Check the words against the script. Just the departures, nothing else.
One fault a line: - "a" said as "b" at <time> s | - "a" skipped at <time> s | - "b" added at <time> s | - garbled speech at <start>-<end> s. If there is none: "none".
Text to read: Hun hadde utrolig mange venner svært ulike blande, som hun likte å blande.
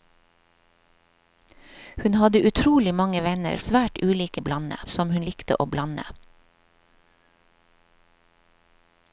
none